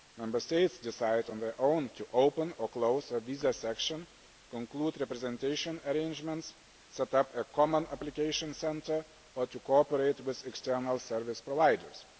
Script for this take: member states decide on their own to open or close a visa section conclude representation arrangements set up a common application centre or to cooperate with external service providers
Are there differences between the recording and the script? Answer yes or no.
no